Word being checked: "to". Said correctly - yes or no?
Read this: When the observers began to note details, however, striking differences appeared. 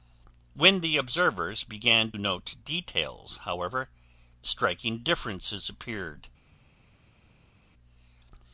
no